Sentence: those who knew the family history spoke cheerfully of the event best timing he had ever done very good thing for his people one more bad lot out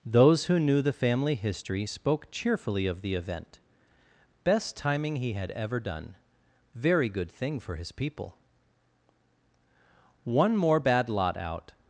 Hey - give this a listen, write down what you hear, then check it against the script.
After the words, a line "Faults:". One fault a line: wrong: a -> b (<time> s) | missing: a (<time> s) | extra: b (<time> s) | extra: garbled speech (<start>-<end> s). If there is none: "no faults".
those who knew the family history spoke cheerfully of the event best timing he had ever done very good thing for his people one more bad lot out
Faults:
no faults